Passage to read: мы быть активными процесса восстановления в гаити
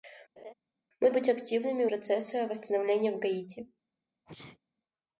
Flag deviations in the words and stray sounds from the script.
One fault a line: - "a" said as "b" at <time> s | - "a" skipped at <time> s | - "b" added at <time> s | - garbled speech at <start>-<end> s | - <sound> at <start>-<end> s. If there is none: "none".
- laugh at 0.4-0.5 s
- sneeze at 4.3-4.6 s